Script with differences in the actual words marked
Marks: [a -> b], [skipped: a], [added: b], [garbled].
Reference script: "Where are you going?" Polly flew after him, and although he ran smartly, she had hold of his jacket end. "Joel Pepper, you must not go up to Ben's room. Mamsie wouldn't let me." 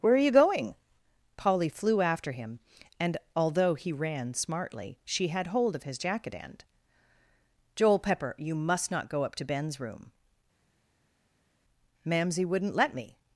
"Where are you going?" Polly flew after him, and although he ran smartly, she had hold of his jacket end. "Joel Pepper, you must not go up to Ben's room. Mamsie wouldn't let me."